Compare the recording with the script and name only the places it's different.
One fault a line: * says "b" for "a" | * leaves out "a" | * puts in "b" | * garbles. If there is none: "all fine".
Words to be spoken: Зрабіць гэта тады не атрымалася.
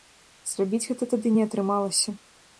all fine